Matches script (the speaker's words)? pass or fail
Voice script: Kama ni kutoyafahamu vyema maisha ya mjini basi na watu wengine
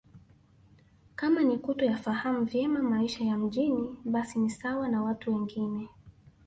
fail